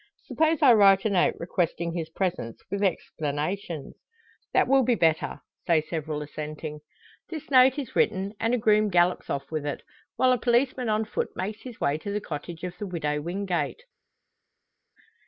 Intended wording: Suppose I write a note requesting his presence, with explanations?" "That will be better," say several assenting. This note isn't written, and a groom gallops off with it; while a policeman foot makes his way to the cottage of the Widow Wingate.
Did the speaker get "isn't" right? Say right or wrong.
wrong